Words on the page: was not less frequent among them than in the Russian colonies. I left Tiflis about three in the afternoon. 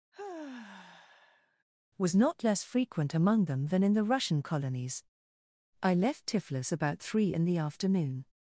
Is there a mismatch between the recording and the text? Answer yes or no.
no